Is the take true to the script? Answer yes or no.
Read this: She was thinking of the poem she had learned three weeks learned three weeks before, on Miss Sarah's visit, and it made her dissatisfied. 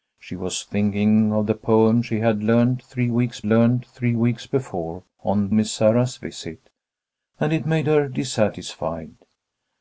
yes